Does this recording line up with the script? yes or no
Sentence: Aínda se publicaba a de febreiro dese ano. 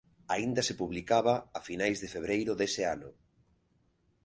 no